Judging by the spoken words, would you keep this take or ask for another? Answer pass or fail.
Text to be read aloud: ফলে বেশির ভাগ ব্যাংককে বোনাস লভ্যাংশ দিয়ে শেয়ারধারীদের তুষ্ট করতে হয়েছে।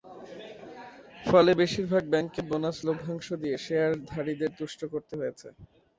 pass